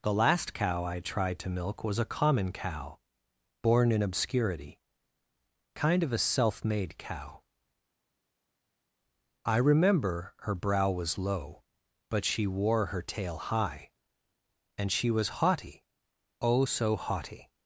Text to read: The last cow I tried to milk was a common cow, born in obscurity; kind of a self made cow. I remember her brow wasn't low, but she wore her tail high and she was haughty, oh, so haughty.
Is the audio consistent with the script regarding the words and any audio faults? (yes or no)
no